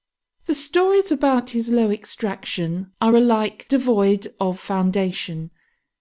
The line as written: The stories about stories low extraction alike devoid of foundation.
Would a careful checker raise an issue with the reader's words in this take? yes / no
yes